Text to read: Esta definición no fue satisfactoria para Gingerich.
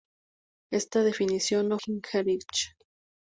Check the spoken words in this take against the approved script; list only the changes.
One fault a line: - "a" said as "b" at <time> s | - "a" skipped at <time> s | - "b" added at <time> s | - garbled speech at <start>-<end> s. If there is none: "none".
- "fue satisfactoria para" skipped at 1.8 s